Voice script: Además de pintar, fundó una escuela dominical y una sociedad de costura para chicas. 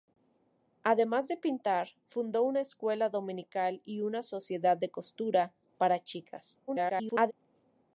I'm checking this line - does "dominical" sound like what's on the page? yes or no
yes